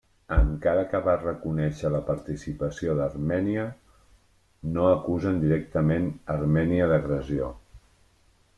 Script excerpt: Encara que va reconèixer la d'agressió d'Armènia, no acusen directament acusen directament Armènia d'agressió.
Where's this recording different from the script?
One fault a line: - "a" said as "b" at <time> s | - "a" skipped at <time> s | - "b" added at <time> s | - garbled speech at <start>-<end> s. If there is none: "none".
- "d'agressió" said as "participació" at 2.1 s
- "acusen directament" skipped at 6.1 s